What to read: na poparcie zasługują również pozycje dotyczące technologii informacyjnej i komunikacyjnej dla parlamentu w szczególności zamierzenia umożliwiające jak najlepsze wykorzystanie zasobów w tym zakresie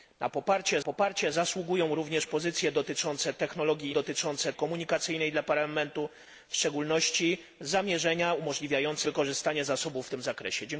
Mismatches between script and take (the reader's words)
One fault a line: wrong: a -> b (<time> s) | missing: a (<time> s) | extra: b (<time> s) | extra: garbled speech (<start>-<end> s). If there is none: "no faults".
extra: poparcie (0.8 s)
wrong: informacyjnej -> dotyczące (3.9 s)
missing: jak najlepsze (9.1 s)